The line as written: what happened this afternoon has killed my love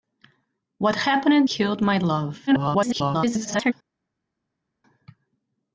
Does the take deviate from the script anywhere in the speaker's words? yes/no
yes